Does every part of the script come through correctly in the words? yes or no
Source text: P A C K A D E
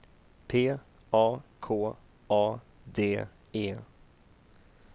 no